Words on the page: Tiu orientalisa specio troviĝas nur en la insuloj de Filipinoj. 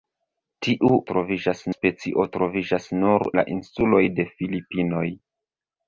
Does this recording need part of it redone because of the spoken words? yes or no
yes